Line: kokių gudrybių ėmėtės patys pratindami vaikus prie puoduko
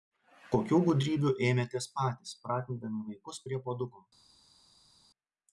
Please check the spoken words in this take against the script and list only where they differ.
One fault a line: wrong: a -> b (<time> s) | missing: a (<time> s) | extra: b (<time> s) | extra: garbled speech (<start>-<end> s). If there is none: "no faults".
no faults